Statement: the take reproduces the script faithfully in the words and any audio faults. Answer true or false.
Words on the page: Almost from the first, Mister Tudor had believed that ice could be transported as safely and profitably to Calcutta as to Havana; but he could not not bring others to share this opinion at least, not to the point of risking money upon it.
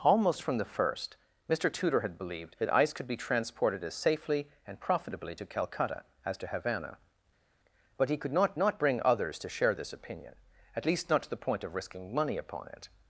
true